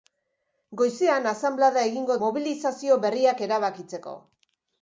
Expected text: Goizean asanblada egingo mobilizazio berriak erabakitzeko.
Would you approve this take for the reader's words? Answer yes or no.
yes